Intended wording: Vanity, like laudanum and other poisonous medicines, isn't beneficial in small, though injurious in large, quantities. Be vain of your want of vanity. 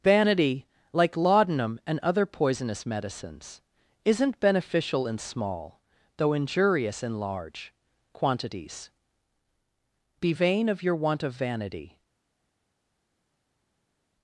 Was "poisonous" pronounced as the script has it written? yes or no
yes